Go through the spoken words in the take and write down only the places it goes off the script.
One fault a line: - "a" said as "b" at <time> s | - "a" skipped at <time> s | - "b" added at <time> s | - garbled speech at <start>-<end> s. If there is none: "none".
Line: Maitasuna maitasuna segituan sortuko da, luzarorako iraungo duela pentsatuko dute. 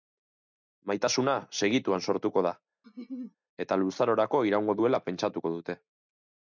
- "maitasuna" skipped at 1.4 s
- "eta" added at 3.7 s